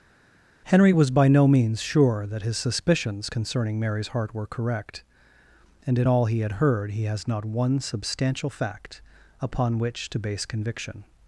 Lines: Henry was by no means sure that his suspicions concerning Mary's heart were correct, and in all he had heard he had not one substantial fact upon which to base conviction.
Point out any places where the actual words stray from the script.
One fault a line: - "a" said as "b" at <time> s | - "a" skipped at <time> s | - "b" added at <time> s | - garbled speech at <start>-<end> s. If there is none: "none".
- "had" said as "has" at 7.0 s